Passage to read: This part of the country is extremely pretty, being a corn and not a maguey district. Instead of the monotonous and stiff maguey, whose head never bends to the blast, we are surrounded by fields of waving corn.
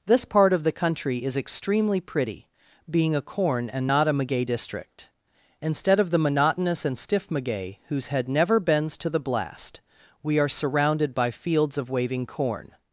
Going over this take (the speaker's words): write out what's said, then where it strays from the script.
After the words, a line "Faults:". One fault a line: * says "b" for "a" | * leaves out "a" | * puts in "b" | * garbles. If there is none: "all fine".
This part of the country is extremely pretty, being a corn and not a maguey district. Instead of the monotonous and stiff maguey, whose head never bends to the blast, we are surrounded by fields of waving corn.
Faults:
all fine